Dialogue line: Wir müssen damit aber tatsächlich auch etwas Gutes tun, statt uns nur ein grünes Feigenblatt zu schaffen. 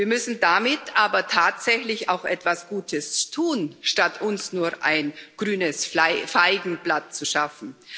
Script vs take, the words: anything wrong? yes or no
no